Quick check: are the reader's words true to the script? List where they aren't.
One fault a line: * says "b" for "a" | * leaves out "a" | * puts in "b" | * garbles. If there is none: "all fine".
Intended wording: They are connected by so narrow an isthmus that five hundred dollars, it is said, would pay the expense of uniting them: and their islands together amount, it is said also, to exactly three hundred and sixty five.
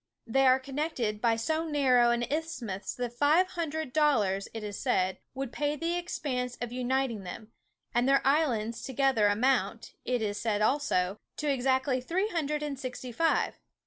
all fine